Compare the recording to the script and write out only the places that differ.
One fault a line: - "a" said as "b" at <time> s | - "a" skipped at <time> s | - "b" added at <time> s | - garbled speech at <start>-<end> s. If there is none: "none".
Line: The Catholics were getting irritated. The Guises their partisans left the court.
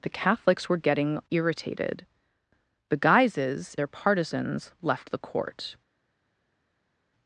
none